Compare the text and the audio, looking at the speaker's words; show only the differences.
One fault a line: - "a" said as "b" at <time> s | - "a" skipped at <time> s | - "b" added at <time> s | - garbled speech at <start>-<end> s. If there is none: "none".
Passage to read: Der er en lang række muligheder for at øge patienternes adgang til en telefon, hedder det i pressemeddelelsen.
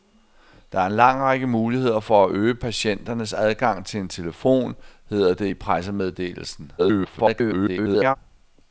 - garbled speech at 6.8-8.2 s